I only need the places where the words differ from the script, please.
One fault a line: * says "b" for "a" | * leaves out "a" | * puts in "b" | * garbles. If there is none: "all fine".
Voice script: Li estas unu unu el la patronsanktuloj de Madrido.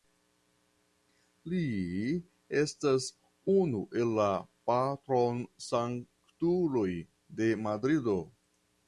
* leaves out "unu"